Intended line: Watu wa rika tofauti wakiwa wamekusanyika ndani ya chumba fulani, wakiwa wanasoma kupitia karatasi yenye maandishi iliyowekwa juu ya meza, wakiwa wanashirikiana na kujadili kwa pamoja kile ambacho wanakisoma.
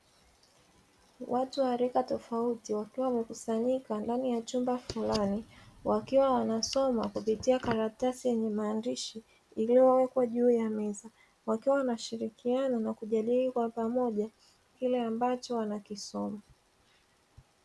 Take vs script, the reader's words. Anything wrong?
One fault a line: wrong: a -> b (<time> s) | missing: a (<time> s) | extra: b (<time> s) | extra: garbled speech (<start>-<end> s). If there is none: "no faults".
no faults